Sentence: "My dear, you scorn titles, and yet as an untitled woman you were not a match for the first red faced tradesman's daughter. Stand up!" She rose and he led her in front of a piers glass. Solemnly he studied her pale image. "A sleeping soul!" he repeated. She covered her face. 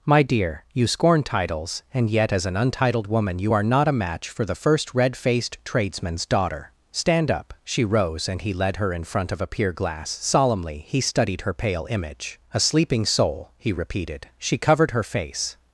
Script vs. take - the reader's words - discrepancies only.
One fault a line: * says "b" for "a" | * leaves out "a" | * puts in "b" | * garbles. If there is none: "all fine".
* says "are" for "were"
* says "pier" for "piers"